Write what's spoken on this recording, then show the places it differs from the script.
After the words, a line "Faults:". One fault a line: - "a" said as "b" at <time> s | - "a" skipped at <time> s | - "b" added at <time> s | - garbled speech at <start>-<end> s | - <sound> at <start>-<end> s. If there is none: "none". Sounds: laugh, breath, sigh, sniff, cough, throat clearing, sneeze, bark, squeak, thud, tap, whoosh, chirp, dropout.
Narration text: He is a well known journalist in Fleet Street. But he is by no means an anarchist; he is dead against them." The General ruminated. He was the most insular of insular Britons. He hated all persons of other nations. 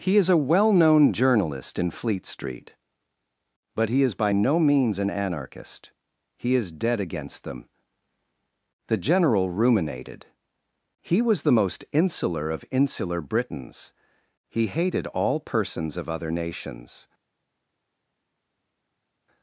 He is a well known journalist in Fleet Street. But he is by no means an anarchist; he is dead against them." The General ruminated. He was the most insular of insular Britons. He hated all persons of other nations.
Faults:
none